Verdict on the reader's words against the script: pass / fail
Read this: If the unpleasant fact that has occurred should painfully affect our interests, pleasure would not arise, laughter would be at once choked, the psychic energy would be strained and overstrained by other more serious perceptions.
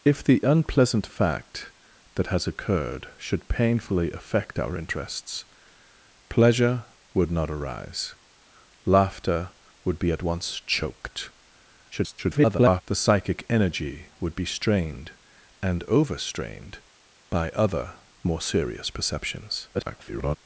fail